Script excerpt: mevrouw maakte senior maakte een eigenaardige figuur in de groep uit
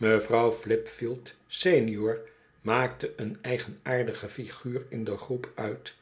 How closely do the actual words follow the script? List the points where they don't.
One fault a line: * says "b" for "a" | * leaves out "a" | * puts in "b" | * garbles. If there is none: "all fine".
* says "flipfield" for "maakte"